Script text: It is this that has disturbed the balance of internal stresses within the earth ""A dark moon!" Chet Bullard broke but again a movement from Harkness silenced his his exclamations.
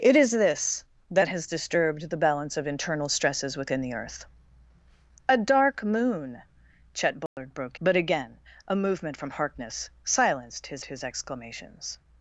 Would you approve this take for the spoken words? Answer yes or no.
yes